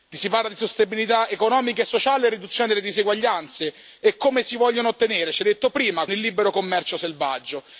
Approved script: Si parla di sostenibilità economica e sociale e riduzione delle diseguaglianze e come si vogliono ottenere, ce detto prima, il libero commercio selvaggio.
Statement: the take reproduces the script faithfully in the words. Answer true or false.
true